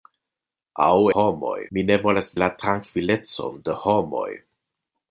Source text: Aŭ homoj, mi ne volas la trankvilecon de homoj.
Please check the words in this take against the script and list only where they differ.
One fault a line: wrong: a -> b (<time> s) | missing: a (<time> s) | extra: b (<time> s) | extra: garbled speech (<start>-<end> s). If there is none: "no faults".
no faults